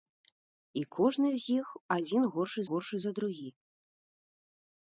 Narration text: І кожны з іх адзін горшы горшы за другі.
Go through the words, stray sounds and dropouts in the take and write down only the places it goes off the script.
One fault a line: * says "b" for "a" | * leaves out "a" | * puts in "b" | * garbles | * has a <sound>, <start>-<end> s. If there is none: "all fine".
all fine